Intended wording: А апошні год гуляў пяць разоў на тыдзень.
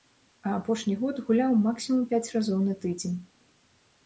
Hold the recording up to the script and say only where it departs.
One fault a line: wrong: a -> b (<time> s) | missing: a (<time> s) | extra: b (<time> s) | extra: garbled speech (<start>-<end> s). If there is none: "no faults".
extra: максімум (1.7 s)